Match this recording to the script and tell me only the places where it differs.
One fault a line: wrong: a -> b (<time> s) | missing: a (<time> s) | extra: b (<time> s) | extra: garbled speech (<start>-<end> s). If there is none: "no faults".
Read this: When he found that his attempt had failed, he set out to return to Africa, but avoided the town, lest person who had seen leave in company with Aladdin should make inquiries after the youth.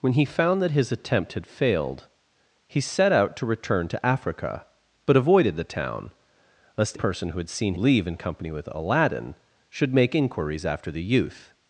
no faults